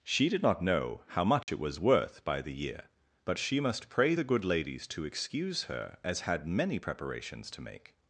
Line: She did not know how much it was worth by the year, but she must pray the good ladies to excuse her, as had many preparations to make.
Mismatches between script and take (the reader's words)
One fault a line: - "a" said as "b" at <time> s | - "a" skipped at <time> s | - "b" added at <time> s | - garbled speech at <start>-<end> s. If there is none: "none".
none